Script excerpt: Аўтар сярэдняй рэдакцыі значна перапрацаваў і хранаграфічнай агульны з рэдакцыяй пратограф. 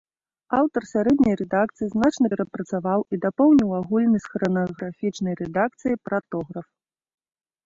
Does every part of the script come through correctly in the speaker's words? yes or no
no